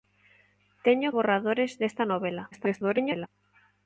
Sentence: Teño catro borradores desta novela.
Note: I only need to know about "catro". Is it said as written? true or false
false